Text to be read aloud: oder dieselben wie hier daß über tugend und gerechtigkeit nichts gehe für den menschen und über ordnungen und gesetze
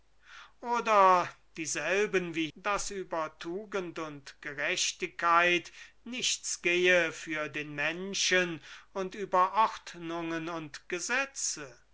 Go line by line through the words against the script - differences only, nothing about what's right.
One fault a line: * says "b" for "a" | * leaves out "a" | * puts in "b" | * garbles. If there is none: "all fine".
* leaves out "hier"